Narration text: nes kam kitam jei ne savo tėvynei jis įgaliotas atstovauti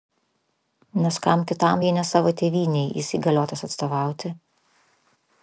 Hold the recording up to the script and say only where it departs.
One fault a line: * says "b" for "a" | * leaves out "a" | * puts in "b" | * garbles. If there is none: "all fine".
all fine